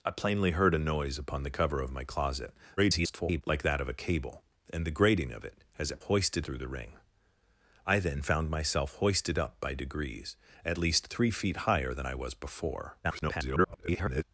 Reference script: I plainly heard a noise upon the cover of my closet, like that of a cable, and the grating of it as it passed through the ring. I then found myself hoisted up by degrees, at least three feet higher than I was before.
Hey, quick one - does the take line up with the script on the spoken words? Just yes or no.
no